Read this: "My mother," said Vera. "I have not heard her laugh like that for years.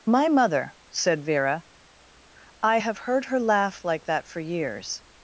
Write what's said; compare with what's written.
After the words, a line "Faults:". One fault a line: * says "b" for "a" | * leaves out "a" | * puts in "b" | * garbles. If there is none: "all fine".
"My mother," said Vera. "I have heard her laugh like that for years.
Faults:
* leaves out "not"